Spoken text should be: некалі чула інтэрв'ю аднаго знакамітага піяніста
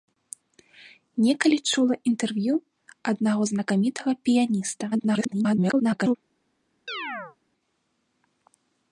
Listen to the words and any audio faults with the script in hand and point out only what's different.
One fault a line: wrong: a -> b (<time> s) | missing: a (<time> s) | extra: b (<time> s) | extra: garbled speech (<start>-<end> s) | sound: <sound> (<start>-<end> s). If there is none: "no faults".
extra: garbled speech (4.9-6.2 s)
sound: chirp (6.9-7.4 s)